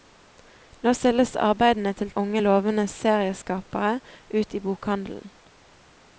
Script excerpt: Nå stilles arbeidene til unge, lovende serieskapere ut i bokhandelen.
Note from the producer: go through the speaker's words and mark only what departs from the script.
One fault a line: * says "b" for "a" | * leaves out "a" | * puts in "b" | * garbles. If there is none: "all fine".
all fine